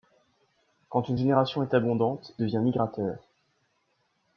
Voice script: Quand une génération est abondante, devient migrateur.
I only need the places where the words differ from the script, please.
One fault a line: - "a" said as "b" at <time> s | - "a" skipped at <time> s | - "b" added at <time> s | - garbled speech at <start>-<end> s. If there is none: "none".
none